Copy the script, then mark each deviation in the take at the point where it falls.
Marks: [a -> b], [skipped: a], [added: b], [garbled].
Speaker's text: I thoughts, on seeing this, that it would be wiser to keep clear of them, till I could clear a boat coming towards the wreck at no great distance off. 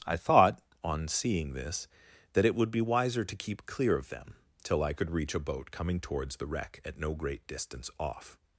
I [thoughts, -> thought] on seeing this, that it would be wiser to keep clear of them, till I could [clear -> reach] a boat coming towards the wreck at no great distance off.